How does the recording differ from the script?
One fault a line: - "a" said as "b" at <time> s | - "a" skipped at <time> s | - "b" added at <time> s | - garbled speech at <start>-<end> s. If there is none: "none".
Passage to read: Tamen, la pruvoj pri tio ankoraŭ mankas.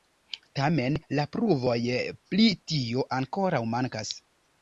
none